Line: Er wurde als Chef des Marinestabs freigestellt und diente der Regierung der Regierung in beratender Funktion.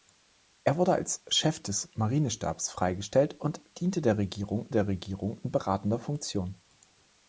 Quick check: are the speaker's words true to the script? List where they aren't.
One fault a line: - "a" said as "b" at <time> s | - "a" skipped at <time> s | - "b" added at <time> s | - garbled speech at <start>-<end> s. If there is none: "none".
none